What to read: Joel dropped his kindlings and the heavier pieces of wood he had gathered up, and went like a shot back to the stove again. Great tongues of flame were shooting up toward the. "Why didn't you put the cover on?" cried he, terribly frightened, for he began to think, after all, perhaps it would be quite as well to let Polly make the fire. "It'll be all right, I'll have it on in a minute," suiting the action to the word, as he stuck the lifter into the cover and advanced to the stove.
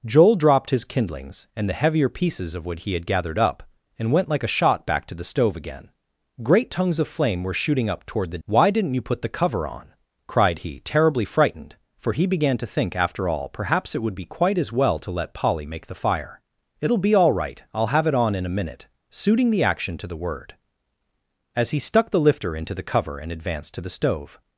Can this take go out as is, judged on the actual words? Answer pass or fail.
pass